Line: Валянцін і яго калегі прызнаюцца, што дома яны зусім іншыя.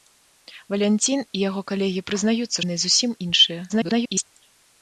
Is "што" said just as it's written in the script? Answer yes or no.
no